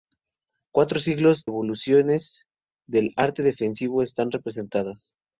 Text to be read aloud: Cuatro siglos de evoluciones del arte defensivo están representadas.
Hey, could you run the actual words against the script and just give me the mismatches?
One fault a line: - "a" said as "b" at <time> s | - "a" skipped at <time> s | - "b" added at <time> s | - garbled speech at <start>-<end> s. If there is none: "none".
- "de" skipped at 1.4 s